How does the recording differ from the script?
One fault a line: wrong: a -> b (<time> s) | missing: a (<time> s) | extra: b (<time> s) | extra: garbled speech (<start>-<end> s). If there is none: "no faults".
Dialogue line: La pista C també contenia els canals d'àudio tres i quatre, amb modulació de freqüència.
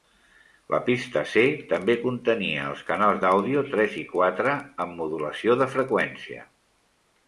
no faults